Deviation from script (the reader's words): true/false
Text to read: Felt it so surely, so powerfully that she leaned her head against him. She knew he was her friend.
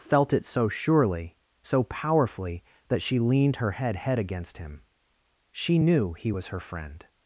true